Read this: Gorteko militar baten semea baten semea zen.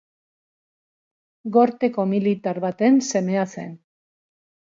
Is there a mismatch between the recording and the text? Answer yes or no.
yes